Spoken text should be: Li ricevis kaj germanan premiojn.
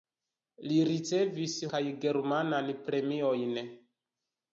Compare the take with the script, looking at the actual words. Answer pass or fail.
pass